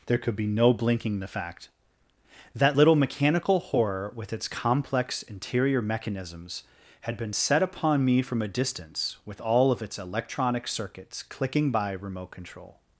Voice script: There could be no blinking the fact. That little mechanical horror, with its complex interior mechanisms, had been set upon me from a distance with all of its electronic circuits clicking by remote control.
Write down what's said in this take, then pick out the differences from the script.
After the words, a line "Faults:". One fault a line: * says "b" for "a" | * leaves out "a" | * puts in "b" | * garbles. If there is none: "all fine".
There could be no blinking the fact. That little mechanical horror, with its complex interior mechanisms, had been set upon me from a distance with all of its electronic circuits clicking by remote control.
Faults:
all fine